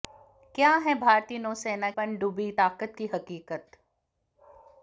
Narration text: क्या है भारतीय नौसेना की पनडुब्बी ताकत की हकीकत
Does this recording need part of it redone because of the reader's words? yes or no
yes